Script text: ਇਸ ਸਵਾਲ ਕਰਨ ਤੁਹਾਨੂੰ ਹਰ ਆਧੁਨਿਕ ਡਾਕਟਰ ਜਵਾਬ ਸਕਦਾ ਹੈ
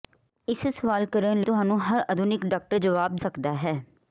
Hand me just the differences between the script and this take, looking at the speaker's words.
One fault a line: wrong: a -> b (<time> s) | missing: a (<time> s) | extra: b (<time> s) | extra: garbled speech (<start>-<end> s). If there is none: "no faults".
no faults